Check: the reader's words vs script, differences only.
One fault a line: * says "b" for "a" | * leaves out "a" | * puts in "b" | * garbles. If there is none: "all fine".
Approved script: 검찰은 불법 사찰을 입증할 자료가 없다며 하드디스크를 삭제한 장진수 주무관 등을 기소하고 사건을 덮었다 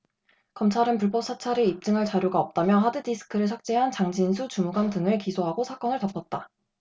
all fine